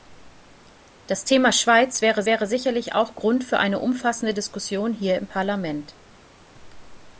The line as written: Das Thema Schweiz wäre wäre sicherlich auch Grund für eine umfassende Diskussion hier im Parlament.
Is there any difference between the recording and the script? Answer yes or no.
no